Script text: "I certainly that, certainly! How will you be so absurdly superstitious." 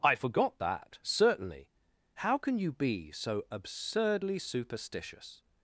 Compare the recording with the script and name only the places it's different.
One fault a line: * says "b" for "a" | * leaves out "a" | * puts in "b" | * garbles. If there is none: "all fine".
* says "forgot" for "certainly"
* says "can" for "will"